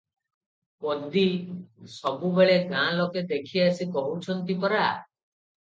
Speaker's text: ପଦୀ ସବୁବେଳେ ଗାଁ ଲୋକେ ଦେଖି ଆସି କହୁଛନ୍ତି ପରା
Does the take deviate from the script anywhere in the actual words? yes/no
no